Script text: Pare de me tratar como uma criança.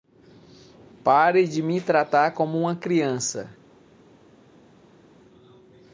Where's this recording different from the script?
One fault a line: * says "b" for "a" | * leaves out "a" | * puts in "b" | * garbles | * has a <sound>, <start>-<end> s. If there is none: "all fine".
all fine